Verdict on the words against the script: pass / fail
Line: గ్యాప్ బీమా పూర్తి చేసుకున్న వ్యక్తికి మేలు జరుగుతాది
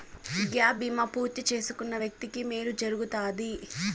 pass